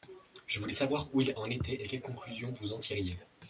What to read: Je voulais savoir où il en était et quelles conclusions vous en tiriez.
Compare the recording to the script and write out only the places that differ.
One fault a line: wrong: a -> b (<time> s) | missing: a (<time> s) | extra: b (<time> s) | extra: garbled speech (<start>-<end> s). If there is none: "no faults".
no faults